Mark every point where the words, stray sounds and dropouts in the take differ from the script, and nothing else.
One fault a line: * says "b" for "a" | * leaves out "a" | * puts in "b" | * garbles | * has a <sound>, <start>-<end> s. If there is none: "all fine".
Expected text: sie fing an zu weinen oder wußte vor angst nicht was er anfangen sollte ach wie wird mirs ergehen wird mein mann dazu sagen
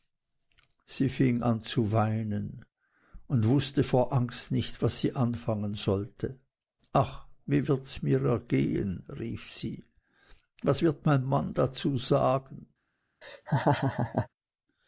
* says "und" for "oder"
* says "sie" for "er"
* puts in "rief sie was"
* has a laugh, 13.2-14.3 s